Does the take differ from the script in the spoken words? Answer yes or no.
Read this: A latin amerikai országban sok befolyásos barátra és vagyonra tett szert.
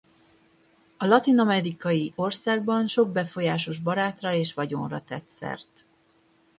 no